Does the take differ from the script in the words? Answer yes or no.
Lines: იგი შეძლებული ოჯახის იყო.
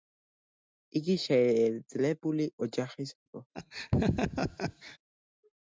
no